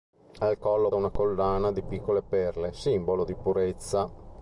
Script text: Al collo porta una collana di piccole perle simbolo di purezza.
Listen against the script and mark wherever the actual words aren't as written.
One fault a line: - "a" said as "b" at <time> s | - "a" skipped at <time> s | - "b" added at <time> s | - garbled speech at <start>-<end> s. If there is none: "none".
- "porta" skipped at 0.9 s